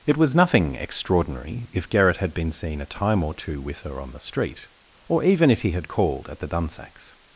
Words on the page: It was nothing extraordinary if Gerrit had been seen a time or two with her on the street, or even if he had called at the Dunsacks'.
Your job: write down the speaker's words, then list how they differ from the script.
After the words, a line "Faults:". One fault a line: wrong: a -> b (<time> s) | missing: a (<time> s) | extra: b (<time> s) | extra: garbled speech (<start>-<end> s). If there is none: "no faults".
It was nothing extraordinary if Gerrit had been seen a time or two with her on the street, or even if he had called at the Dunsacks'.
Faults:
no faults